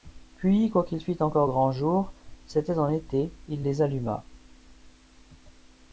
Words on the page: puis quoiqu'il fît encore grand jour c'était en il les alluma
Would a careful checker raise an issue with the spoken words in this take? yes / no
yes